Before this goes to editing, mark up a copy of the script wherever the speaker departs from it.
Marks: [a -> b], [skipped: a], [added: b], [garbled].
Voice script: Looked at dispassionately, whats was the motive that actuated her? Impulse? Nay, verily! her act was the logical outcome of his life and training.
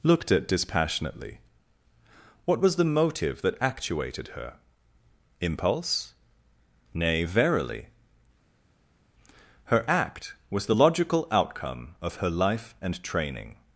Looked at dispassionately, [whats -> what] was the motive that actuated her? Impulse? Nay, verily! her act was the logical outcome of [his -> her] life and training.